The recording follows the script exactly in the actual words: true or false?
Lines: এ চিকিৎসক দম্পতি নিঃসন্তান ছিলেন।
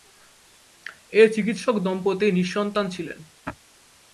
true